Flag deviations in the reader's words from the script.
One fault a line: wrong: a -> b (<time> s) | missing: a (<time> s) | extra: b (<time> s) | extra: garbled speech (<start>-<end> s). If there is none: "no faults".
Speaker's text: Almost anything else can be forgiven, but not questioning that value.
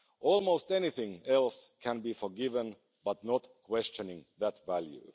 no faults